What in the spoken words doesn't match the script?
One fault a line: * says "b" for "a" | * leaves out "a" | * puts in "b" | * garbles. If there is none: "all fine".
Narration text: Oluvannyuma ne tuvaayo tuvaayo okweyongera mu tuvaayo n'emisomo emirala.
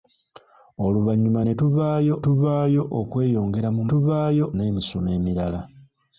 all fine